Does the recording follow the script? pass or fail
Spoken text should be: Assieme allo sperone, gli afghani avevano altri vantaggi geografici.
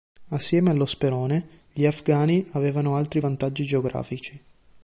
pass